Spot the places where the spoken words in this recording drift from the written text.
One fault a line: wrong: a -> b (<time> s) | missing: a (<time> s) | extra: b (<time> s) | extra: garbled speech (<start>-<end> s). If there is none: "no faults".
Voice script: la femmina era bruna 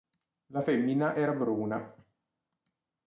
no faults